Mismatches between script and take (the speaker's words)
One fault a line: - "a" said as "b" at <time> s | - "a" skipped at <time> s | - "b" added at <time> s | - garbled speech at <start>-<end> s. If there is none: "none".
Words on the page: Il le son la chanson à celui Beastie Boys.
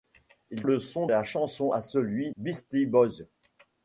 none